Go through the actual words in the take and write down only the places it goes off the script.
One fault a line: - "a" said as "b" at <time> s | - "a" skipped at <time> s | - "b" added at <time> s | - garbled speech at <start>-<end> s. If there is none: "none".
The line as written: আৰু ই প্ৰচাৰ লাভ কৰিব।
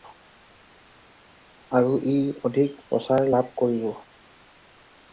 - "অধিক" added at 2.4 s